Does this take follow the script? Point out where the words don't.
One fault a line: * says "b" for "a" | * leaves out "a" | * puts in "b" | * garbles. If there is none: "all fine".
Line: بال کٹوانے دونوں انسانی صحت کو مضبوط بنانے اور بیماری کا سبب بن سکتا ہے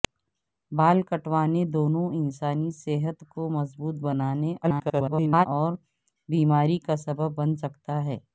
* garbles